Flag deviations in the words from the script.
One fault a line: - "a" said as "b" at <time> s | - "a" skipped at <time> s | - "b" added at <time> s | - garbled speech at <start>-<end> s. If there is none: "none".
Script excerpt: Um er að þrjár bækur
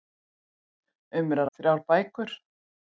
none